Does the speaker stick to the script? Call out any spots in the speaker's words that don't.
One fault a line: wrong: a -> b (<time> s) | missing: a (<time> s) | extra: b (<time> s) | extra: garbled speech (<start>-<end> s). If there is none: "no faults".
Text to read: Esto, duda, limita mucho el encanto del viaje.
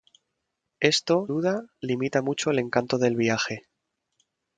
no faults